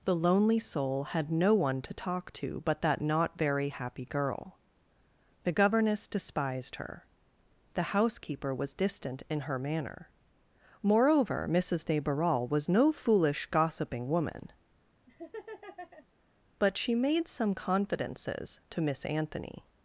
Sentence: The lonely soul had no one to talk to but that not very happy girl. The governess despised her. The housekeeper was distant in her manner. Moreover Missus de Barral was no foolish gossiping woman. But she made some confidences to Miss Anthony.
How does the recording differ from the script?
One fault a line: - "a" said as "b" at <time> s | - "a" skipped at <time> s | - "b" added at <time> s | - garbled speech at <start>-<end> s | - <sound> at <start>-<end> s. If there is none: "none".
- laugh at 15.1-16.1 s